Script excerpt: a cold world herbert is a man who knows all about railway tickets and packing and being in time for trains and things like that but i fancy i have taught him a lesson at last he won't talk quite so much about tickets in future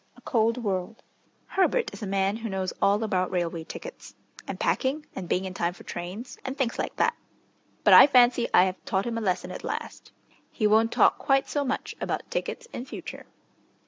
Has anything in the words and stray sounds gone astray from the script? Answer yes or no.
no